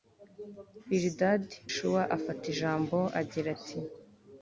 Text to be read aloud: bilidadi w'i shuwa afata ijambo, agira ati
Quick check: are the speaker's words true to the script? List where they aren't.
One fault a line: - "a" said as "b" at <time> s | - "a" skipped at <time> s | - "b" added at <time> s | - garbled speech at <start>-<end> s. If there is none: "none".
- "w'i" skipped at 1.6 s